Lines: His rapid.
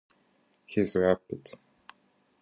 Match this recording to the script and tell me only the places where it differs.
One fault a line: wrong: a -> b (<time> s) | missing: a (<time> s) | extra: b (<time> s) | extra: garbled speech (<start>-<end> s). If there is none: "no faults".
no faults